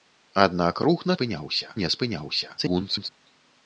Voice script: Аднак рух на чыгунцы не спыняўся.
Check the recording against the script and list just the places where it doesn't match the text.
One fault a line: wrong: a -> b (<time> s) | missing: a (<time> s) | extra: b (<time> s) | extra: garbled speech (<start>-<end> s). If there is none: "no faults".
wrong: чыгунцы -> спыняўся (1.2 s)
extra: garbled speech (2.6-3.1 s)